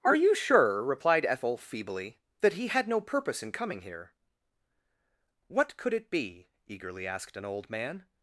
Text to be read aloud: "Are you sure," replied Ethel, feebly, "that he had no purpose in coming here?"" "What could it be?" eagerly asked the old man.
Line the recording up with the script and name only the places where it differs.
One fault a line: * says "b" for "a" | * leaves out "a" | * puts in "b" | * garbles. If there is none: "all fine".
* says "an" for "the"